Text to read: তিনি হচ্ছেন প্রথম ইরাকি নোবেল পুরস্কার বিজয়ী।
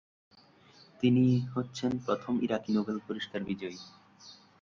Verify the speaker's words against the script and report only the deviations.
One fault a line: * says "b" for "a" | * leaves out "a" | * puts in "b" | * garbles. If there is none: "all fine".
all fine